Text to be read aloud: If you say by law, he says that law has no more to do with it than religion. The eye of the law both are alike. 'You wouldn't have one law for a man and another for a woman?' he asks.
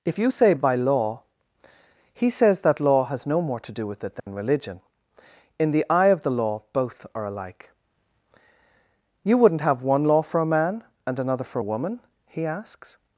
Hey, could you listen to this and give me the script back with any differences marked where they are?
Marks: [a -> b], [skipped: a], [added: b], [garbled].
If you say by law, he says that law has no more to do with it than religion. [added: In] The eye of the law both are alike. 'You wouldn't have one law for a man and another for a woman?' he asks.